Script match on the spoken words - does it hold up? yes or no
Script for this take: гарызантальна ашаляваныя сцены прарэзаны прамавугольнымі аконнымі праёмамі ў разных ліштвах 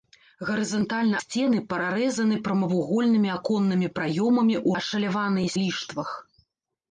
no